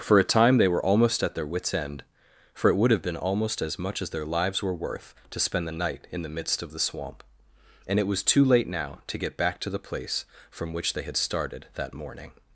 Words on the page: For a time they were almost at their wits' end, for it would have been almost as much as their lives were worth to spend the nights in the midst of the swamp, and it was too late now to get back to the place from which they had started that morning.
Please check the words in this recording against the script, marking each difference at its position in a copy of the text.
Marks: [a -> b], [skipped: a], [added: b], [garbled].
For a time they were almost at their wits' end, for it would have been almost as much as their lives were worth to spend the [nights -> night] in the midst of the swamp, and it was too late now to get back to the place from which they had started that morning.